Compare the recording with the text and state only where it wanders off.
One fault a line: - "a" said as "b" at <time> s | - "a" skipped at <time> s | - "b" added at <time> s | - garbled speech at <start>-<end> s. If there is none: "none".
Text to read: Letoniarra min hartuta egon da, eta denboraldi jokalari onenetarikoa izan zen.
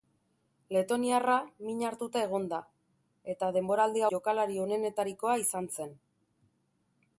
none